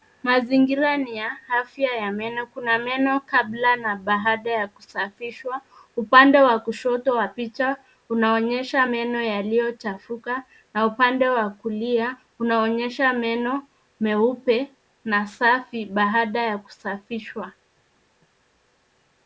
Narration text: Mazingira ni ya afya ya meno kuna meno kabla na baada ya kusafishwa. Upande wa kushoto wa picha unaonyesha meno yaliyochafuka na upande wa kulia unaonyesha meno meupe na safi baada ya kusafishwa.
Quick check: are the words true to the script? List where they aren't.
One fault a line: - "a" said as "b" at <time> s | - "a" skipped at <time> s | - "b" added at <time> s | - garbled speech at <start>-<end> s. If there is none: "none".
none